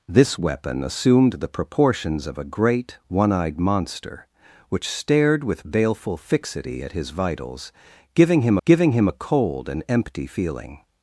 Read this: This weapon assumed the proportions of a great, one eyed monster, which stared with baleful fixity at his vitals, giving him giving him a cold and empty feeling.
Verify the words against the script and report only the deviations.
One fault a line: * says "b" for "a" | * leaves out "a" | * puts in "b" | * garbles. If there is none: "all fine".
all fine